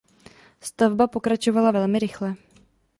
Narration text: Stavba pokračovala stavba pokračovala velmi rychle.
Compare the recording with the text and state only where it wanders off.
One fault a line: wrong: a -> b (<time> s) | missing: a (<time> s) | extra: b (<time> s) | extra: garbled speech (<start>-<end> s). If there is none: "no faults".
missing: stavba pokračovala (1.7 s)